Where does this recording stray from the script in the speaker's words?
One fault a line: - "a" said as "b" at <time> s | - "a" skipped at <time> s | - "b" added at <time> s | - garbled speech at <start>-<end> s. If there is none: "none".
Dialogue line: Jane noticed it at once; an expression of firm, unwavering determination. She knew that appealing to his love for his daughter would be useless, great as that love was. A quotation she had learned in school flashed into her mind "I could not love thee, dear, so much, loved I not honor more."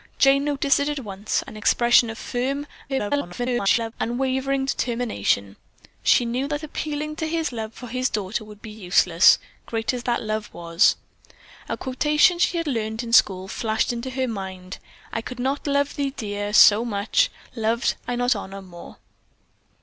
- garbled speech at 2.9-3.9 s